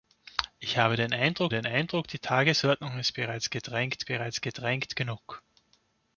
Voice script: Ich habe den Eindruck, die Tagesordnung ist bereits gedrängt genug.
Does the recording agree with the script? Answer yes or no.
no